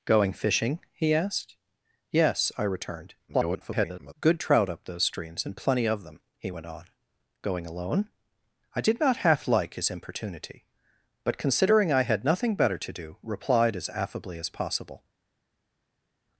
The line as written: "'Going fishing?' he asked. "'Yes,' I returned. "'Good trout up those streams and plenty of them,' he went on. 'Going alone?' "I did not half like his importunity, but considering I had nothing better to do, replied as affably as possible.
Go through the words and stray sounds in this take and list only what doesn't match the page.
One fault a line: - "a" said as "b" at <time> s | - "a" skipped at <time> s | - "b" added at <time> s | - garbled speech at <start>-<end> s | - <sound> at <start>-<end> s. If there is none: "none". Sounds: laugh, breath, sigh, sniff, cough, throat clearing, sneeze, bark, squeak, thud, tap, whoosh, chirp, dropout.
- garbled speech at 3.3-4.1 s